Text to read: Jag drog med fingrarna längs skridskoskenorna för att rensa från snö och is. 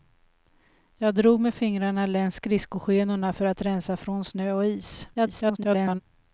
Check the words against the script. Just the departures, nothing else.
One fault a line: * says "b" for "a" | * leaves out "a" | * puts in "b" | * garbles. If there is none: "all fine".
* garbles